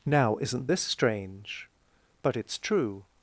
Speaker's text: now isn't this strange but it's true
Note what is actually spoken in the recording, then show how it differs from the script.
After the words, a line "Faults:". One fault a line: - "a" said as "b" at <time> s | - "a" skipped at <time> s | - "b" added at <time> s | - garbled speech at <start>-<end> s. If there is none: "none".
now isn't this strange but it's true
Faults:
none